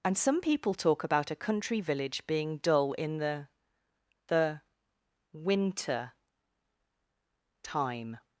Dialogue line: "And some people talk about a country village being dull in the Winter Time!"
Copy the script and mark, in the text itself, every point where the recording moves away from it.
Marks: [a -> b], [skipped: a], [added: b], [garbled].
"And some people talk about a country village being dull in the [added: the] Winter Time!"